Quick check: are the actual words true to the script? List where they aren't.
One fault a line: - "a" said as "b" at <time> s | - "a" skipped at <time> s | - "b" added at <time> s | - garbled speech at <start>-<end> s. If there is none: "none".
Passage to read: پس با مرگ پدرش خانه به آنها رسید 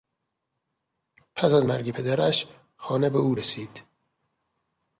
- "با" said as "از" at 1.5 s
- "آنها" said as "او" at 3.2 s